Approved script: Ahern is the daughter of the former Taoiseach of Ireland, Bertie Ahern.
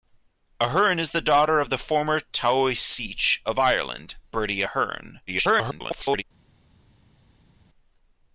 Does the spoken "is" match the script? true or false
true